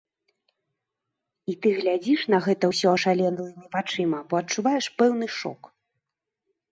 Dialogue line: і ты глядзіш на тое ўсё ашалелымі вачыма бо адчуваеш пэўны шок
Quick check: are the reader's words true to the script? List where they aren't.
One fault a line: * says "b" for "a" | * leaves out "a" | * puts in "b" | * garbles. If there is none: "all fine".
* says "гэта" for "тое"